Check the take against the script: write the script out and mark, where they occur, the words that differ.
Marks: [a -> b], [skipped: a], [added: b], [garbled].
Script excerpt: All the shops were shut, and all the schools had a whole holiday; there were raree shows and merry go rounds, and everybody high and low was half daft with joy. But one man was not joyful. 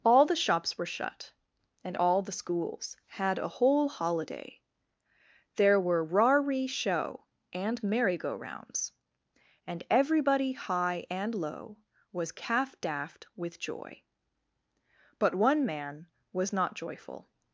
All the shops were shut, and all the schools had a whole holiday; there were raree [shows -> show] and merry go rounds, and everybody high and low was [half -> calf] daft with joy. But one man was not joyful.